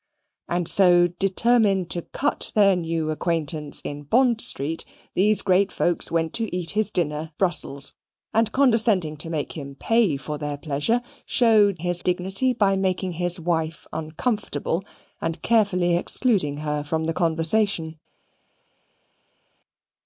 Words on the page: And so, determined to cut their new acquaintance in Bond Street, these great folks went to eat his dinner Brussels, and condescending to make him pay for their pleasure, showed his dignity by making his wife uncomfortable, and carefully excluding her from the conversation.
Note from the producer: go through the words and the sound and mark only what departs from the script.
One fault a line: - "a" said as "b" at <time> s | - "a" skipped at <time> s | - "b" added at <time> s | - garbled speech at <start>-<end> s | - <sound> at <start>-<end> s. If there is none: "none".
none